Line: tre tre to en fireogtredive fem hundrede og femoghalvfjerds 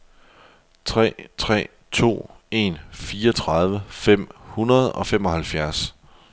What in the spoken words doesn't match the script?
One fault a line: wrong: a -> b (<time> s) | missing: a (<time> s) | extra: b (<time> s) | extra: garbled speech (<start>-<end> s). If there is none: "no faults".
no faults